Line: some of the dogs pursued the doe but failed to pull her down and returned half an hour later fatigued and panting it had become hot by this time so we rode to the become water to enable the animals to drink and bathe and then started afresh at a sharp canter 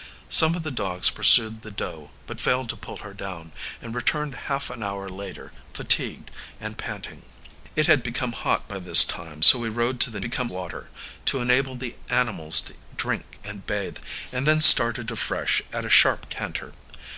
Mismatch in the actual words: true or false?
false